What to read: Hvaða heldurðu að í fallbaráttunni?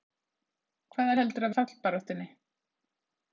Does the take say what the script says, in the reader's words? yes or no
yes